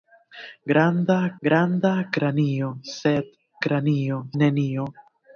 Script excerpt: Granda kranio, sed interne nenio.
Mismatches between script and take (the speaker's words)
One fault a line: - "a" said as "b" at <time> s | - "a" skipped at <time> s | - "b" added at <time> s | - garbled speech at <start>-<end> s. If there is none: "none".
- "granda" added at 1.4 s
- "interne" said as "kranio" at 3.7 s